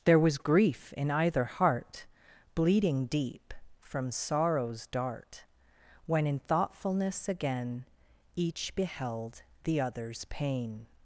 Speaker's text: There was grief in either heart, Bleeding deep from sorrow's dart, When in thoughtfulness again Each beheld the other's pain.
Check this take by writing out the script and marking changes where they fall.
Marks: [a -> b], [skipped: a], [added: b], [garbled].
There was grief in either heart, Bleeding deep from sorrow's dart, When in thoughtfulness again Each beheld the other's pain.